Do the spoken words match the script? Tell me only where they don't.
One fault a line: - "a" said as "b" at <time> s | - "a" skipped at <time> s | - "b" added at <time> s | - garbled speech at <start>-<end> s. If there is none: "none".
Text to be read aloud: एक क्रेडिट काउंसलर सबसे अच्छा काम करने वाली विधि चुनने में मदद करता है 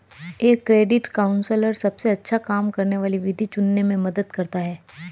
none